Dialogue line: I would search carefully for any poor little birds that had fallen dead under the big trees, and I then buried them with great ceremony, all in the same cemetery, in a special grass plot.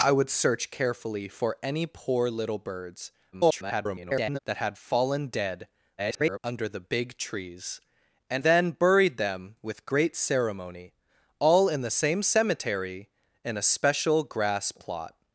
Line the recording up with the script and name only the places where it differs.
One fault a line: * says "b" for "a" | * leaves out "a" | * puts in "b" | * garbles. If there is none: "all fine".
* garbles
* garbles
* leaves out "I"